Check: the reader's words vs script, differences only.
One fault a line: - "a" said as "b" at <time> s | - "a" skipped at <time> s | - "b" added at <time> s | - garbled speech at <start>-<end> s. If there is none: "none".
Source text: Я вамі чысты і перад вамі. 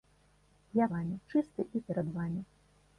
none